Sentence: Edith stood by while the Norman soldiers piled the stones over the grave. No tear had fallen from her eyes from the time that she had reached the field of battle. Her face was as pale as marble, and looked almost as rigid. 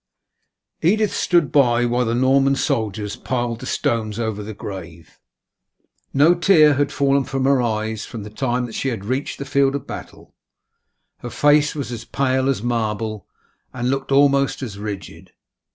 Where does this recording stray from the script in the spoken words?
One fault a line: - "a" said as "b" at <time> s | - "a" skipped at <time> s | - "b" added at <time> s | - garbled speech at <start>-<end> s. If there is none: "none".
none